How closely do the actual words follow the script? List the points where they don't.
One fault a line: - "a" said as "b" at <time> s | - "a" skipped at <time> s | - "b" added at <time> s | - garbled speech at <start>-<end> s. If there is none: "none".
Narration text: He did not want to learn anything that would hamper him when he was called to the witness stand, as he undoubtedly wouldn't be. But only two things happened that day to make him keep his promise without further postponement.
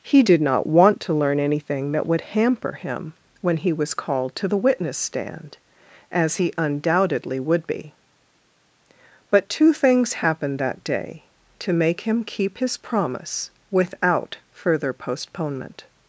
- "wouldn't" said as "would" at 7.4 s
- "only" skipped at 9.5 s